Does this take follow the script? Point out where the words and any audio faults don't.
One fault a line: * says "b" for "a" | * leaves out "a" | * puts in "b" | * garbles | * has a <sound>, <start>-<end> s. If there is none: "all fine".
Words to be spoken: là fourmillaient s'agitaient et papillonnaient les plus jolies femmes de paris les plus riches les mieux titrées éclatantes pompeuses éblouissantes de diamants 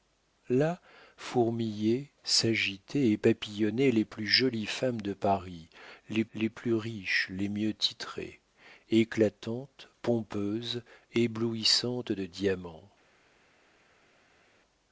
* puts in "les"